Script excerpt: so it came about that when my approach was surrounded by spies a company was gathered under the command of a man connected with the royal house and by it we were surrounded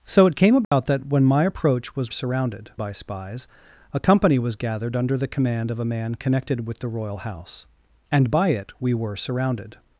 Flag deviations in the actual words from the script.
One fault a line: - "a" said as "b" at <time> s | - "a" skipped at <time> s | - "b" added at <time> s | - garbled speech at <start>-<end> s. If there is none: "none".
none